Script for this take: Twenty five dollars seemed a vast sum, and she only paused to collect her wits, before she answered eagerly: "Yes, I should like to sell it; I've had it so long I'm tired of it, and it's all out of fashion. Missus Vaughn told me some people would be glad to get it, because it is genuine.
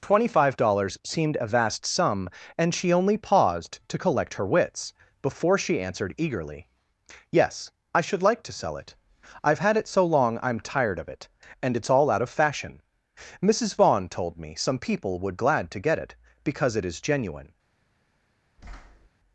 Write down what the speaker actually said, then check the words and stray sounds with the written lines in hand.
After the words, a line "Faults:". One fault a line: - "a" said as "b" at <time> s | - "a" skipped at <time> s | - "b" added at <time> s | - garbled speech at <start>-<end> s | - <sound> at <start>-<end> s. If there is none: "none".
Twenty five dollars seemed a vast sum, and she only paused to collect her wits, before she answered eagerly: "Yes, I should like to sell it; I've had it so long I'm tired of it, and it's all out of fashion. Missus Vaughn told me some people would glad to get it, because it is genuine.
Faults:
- "be" skipped at 15.4 s
- thud at 18.6-19.1 s